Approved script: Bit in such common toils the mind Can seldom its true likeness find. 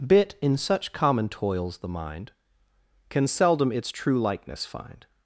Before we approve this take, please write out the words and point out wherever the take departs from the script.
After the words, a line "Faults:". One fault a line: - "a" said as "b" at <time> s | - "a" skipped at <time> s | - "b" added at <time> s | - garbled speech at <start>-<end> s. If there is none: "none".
Bit in such common toils the mind Can seldom its true likeness find.
Faults:
none